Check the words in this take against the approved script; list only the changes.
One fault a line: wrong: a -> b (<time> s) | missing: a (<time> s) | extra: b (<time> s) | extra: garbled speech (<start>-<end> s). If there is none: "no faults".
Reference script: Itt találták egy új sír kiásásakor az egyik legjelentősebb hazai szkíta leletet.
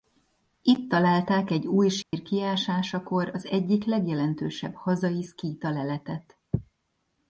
no faults